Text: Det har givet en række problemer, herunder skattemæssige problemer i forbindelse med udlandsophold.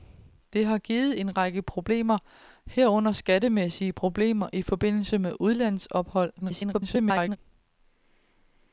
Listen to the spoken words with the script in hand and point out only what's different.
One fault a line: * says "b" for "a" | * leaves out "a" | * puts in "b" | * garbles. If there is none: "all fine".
* garbles